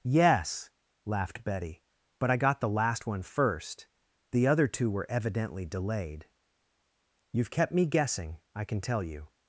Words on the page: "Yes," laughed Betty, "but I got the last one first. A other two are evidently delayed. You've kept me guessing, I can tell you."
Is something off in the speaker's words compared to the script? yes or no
yes